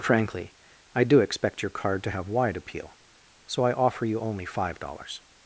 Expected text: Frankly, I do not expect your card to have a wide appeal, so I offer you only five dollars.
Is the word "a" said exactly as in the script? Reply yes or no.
no